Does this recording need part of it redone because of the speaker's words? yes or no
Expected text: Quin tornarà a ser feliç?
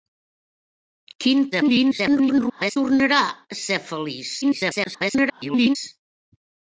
yes